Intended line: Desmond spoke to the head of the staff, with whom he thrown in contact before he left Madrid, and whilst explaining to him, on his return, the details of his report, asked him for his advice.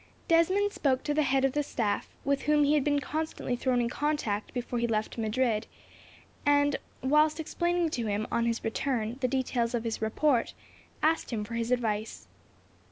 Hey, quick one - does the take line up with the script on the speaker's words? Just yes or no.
no